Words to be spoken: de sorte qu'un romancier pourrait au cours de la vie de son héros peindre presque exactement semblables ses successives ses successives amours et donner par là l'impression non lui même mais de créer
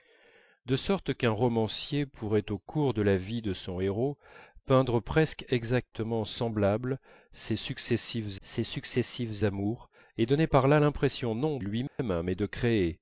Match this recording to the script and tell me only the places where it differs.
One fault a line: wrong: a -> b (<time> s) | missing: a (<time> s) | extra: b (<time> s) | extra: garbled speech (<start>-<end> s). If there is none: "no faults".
no faults